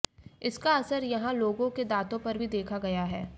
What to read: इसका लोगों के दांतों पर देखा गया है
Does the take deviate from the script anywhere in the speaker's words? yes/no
yes